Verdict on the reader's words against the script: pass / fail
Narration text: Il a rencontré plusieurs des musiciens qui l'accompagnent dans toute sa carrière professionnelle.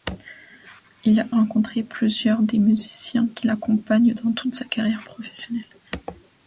pass